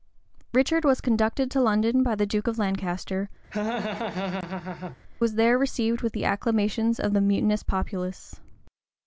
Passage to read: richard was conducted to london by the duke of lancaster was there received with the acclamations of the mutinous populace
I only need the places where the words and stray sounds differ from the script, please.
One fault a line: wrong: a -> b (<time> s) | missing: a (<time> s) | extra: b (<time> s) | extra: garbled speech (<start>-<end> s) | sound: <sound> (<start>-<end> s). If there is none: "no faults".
sound: laugh (3.5-5.0 s)